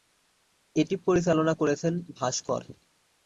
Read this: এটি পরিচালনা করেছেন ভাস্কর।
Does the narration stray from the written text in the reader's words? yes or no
no